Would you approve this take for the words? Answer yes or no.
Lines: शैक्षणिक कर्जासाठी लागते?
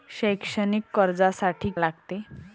yes